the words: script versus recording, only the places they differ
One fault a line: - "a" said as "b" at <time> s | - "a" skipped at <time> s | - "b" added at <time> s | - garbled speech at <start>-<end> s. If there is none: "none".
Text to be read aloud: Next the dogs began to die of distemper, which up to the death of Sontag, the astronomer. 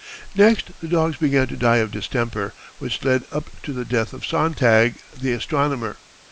- "led" added at 3.0 s